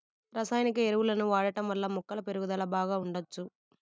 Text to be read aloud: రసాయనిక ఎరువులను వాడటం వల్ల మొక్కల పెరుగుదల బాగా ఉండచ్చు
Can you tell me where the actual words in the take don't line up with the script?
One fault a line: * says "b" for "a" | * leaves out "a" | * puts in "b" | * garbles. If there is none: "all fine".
all fine